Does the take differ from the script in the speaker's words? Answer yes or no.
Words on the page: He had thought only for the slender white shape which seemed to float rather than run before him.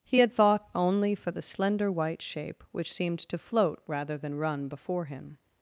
no